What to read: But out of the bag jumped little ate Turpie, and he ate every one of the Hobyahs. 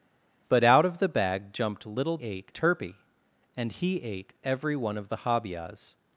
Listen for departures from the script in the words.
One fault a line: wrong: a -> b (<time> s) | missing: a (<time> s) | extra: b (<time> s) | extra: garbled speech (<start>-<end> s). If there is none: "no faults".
no faults